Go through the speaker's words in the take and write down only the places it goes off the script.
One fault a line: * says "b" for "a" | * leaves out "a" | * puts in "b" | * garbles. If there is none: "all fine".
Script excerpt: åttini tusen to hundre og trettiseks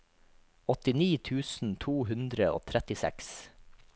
all fine